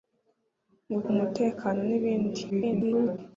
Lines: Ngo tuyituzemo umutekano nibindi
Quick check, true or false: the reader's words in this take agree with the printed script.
false